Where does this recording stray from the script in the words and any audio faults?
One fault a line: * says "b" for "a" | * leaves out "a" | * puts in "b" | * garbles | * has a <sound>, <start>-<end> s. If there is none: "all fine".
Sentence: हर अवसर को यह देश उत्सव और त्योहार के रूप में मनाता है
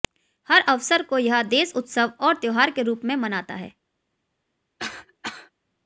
* has a cough, 4.8-5.5 s